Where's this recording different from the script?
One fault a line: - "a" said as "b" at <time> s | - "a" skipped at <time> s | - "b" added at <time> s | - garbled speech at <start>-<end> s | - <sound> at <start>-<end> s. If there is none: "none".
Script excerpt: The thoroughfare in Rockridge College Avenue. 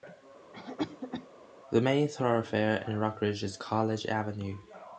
- cough at 0.5-1.3 s
- "main" added at 1.8 s
- "is" added at 3.4 s